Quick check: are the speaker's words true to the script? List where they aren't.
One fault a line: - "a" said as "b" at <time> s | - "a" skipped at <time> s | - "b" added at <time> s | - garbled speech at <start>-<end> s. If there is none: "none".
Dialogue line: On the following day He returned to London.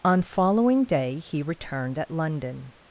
- "the" skipped at 0.2 s
- "to" said as "at" at 2.0 s